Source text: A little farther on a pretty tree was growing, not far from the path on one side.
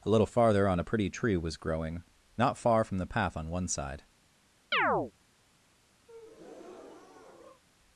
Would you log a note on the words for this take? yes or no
no